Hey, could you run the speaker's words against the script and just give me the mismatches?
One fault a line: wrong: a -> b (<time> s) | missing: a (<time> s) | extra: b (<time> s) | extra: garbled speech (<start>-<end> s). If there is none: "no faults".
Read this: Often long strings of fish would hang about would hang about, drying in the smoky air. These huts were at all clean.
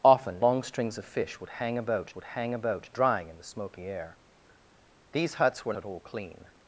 no faults